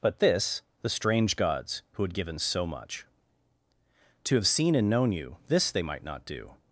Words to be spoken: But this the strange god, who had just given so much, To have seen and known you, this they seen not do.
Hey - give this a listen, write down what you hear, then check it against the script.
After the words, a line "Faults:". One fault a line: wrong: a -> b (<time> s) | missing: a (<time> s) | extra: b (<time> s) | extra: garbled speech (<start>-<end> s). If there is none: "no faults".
But this the strange gods, who had given so much, To have seen and known you, this they might not do.
Faults:
wrong: god -> gods (1.4 s)
missing: just (2.1 s)
wrong: seen -> might (5.8 s)